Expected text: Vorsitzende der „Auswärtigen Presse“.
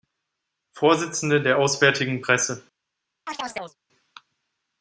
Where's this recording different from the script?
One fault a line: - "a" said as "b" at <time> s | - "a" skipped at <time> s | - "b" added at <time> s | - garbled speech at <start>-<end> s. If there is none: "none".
none